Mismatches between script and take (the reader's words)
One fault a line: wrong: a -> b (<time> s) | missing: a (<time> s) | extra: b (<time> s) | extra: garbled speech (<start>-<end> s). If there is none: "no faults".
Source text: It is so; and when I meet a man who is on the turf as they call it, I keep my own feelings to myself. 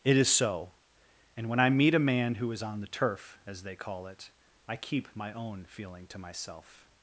wrong: feelings -> feeling (5.7 s)